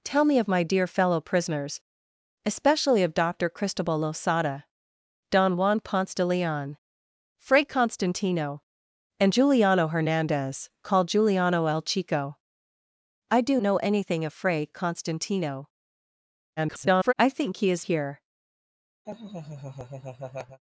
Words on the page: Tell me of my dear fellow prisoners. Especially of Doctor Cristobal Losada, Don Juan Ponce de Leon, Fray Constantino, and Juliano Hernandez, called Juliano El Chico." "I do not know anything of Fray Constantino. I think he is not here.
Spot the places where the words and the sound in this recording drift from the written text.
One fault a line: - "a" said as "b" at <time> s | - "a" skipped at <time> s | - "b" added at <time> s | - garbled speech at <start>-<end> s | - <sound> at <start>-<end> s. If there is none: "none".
- "not" skipped at 13.6 s
- garbled speech at 16.6-17.1 s
- "not" skipped at 17.8 s
- laugh at 19.0-20.6 s